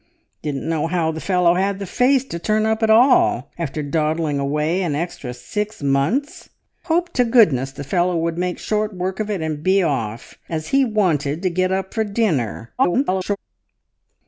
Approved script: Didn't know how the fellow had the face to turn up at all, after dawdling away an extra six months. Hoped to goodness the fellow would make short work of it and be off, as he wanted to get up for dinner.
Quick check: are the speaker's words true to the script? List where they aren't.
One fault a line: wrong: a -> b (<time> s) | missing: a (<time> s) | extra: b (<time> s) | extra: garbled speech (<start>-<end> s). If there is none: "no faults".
extra: garbled speech (12.8-13.4 s)